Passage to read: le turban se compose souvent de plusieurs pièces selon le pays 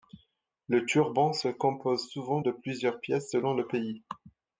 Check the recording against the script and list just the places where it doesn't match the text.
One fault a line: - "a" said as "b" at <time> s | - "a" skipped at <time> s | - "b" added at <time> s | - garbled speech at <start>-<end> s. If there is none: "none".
none